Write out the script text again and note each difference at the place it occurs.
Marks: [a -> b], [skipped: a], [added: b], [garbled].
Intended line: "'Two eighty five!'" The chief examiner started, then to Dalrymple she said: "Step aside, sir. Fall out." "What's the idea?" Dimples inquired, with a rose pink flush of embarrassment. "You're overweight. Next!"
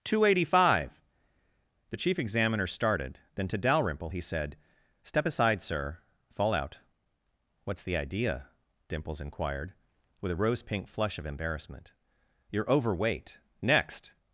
"'Two eighty five!'" The chief examiner started, then to Dalrymple [she -> he] said: "Step aside, sir. Fall out." "What's the idea?" Dimples inquired, with a rose pink flush of embarrassment. "You're overweight. Next!"